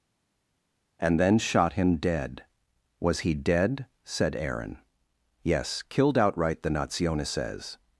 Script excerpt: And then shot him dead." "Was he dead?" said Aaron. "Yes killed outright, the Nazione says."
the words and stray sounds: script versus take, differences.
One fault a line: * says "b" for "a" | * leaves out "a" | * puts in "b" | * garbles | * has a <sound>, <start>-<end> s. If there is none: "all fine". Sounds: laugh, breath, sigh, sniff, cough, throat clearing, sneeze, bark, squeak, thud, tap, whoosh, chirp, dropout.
all fine